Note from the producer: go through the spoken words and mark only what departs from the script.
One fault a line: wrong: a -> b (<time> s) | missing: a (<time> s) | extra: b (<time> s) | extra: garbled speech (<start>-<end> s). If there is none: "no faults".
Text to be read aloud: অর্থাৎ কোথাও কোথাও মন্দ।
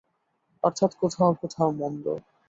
no faults